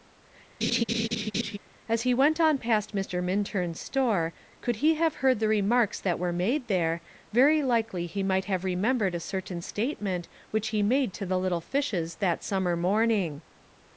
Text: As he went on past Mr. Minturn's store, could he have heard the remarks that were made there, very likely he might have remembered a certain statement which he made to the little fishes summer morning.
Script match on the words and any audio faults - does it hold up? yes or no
no